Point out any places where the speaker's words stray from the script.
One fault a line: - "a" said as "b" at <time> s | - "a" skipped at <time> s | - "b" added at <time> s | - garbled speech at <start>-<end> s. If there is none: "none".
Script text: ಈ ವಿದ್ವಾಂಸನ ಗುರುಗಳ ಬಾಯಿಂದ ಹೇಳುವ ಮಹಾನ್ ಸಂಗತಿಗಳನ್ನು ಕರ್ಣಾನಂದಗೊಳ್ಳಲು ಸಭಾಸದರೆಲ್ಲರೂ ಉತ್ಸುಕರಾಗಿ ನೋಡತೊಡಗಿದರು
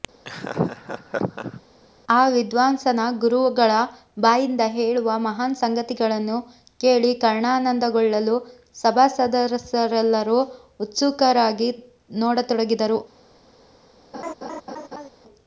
- "ಈ" said as "ಆ" at 2.1 s
- "ಕೇಳಿ" added at 6.8 s